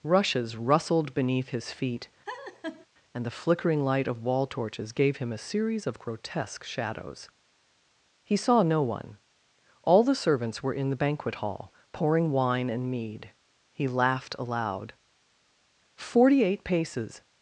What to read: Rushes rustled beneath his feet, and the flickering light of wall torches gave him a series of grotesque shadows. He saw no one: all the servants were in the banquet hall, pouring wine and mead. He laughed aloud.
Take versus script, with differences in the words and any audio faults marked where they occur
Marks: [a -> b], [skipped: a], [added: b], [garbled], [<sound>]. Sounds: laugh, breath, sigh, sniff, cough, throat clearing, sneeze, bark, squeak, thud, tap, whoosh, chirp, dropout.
Rushes rustled beneath his feet, [laugh] and the flickering light of wall torches gave him a series of grotesque shadows. He saw no one: all the servants were in the banquet hall, pouring wine and mead. He laughed aloud. [added: Forty eight paces]